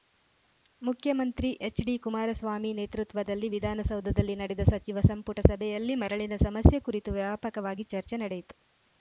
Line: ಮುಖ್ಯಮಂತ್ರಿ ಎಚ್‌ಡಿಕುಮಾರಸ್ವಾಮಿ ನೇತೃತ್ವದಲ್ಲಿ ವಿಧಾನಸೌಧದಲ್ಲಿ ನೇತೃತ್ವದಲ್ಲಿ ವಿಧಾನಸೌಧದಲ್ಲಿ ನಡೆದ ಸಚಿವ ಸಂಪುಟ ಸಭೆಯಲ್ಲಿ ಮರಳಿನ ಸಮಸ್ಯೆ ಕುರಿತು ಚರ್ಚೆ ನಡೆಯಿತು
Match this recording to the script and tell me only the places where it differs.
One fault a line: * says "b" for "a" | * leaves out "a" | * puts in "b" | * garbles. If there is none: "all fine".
* leaves out "ನೇತೃತ್ವದಲ್ಲಿ ವಿಧಾನಸೌಧದಲ್ಲಿ"
* puts in "ವ್ಯಾಪಕವಾಗಿ"